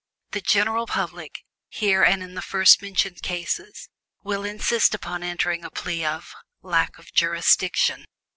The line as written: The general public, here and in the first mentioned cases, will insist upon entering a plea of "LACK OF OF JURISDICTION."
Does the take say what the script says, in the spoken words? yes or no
no